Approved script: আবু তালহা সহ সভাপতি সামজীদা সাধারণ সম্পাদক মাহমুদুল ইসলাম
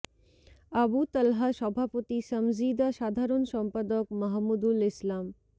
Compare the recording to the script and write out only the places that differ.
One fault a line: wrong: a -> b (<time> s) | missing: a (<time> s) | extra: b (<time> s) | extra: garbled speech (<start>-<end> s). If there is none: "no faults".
missing: সহ (1.5 s)